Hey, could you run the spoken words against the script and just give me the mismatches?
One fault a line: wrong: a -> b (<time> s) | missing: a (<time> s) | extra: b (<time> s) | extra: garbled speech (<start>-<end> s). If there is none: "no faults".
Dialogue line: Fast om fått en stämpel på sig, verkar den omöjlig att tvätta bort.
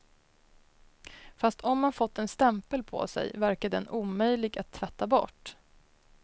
extra: man (1.8 s)